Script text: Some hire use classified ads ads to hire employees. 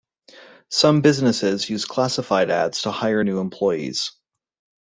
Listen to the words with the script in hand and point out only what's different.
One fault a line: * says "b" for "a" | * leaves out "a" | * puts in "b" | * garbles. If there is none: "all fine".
* says "businesses" for "hire"
* leaves out "ads"
* puts in "new"